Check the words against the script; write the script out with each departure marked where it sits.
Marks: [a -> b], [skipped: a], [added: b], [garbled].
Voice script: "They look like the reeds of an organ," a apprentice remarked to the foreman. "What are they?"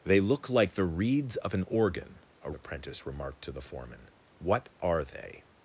"They look like the reeds of an organ," a apprentice remarked to the foreman. "What are they?"